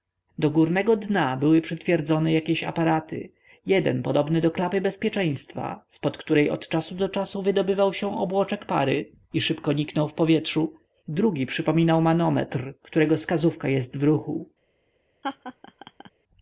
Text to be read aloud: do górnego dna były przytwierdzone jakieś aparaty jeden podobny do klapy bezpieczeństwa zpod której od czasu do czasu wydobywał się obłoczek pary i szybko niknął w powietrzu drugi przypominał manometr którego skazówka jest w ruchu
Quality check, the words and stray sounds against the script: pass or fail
fail